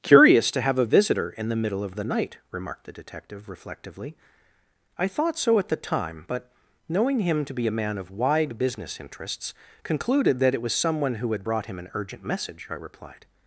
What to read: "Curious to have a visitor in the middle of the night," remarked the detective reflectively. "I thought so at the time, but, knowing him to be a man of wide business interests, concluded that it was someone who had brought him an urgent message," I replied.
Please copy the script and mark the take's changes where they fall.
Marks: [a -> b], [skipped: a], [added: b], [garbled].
"Curious to have a visitor in the middle of the night," remarked the detective reflectively. "I thought so at the time, but, knowing him to be a man of wide business interests, concluded that it was someone who had brought him an urgent message," I replied.